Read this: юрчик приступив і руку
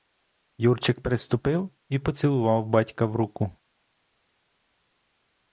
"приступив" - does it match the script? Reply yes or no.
yes